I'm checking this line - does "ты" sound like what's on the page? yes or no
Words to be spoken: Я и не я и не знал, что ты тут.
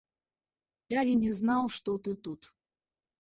yes